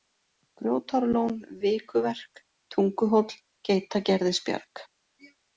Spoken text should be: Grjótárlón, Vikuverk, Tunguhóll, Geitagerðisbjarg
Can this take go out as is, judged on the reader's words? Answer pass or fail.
pass